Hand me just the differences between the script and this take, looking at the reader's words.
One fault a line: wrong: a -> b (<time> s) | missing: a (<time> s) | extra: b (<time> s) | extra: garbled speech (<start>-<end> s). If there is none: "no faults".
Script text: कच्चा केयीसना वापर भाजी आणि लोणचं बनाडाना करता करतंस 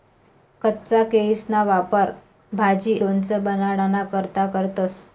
missing: आणि (3.0 s)